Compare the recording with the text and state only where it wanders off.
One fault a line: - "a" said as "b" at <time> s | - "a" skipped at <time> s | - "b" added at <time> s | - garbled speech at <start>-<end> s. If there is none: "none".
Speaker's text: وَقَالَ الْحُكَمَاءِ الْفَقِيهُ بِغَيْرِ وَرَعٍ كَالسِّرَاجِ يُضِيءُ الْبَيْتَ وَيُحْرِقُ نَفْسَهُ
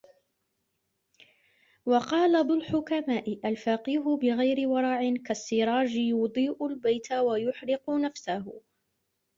none